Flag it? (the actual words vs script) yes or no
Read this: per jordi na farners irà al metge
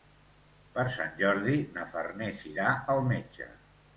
yes